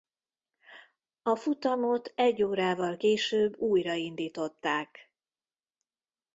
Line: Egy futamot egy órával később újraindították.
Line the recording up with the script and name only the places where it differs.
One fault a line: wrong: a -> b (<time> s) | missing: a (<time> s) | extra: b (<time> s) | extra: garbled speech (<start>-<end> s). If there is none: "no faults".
wrong: Egy -> A (1.2 s)